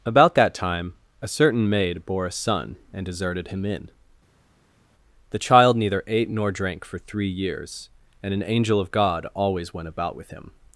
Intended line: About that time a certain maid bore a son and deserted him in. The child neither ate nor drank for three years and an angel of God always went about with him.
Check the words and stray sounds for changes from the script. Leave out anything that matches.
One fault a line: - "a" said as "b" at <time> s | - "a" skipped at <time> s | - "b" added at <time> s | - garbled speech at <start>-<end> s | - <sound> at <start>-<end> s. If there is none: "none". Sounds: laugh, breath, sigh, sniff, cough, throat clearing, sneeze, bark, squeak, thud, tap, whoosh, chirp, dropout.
none